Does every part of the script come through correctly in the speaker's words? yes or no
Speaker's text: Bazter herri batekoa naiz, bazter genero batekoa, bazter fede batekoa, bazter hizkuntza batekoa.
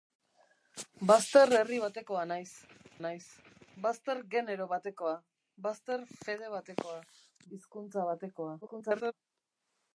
no